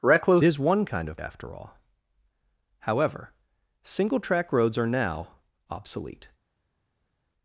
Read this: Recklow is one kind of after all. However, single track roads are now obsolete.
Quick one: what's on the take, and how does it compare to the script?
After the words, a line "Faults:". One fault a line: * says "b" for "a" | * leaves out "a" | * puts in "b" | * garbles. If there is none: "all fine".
Recklow is one kind of after all. However, single track roads are now obsolete.
Faults:
all fine